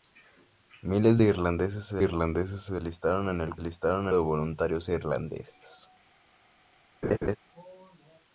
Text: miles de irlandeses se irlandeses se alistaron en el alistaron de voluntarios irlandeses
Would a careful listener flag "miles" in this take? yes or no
no